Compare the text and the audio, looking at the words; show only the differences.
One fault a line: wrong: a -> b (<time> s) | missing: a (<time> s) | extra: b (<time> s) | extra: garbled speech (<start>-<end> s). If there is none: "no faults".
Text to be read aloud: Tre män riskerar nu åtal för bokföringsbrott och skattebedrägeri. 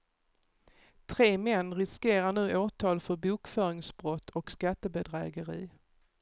no faults